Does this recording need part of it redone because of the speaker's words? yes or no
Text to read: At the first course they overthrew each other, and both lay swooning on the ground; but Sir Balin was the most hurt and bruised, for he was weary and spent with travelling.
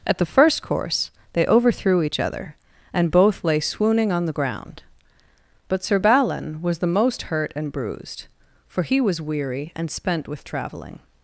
no